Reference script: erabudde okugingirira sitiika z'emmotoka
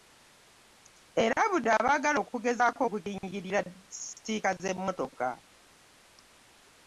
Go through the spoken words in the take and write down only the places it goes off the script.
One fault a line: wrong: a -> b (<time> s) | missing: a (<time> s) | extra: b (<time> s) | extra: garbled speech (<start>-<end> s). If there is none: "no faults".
extra: abaagala okugezaako (1.8 s)